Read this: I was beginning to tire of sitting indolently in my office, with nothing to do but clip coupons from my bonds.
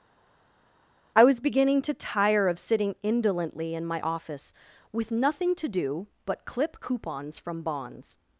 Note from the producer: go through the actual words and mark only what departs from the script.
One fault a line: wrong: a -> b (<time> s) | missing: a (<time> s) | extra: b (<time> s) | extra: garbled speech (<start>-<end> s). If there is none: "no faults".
missing: my (7.6 s)